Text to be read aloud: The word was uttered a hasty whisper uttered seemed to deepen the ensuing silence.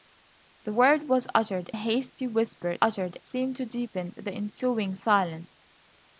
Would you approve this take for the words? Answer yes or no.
yes